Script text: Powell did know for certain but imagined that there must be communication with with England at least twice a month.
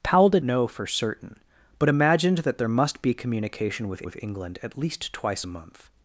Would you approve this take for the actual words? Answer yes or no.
yes